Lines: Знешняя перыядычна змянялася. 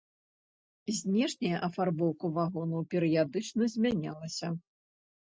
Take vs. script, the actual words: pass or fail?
fail